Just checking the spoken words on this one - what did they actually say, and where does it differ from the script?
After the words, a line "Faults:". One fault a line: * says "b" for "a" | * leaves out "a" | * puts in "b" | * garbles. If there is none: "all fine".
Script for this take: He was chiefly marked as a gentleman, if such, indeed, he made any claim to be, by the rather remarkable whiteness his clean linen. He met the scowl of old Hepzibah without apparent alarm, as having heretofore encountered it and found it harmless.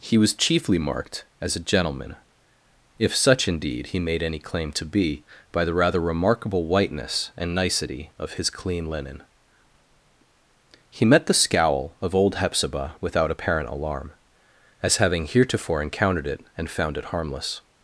He was chiefly marked as a gentleman, if such, indeed, he made any claim to be, by the rather remarkable whiteness and nicety of his clean linen. He met the scowl of old Hepzibah without apparent alarm, as having heretofore encountered it and found it harmless.
Faults:
* puts in "and nicety of"